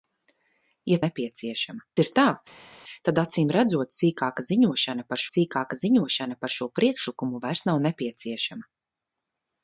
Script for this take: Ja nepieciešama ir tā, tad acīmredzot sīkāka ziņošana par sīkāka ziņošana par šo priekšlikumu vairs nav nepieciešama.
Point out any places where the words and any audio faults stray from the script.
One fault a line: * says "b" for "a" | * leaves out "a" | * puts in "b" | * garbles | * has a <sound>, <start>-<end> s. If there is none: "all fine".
all fine